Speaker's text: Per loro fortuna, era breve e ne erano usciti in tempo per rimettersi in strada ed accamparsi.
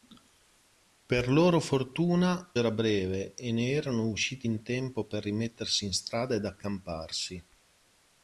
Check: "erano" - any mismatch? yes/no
no